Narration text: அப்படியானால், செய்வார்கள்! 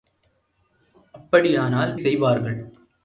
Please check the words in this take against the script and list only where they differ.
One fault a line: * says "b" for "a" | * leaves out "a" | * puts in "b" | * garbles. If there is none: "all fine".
all fine